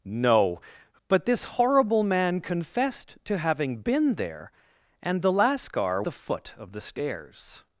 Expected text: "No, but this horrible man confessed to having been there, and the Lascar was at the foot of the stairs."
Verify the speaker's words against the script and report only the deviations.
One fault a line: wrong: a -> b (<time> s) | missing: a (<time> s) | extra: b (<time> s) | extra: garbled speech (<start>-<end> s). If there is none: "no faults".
missing: was at (6.0 s)